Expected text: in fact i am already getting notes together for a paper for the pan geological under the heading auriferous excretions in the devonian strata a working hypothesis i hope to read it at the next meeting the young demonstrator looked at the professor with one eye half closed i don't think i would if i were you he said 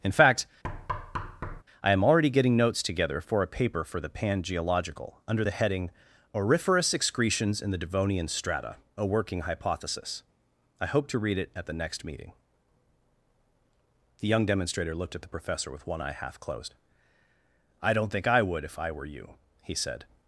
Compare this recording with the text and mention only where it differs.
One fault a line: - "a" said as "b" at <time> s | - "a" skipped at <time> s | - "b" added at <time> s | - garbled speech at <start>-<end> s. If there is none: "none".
none